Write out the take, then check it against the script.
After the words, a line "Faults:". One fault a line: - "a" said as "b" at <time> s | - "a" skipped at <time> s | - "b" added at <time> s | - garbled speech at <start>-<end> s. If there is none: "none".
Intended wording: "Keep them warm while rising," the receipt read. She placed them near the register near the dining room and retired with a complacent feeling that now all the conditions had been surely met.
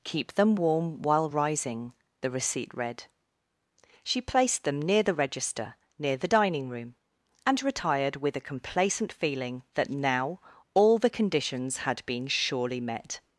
"Keep them warm while rising," the receipt read. She placed them near the register near the dining room and retired with a complacent feeling that now all the conditions had been surely met.
Faults:
none